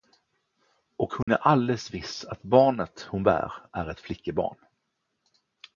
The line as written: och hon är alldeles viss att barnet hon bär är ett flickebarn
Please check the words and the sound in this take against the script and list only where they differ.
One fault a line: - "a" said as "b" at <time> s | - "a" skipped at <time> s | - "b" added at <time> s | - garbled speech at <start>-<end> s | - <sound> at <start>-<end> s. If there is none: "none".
- dropout at 1.2-1.3 s